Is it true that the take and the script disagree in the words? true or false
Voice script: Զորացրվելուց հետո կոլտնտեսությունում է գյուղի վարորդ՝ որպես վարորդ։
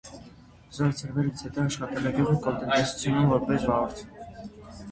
true